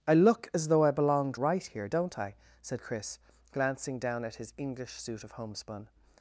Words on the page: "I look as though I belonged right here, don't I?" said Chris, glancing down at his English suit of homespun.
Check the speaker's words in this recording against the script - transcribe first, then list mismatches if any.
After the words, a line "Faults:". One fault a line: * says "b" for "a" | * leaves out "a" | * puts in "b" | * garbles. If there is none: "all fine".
"I look as though I belonged right here, don't I?" said Chris, glancing down at his English suit of homespun.
Faults:
all fine